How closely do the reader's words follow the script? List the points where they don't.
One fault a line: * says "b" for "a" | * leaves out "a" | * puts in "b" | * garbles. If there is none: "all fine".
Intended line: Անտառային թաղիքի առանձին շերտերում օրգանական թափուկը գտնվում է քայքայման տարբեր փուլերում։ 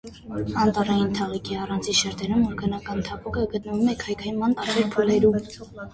all fine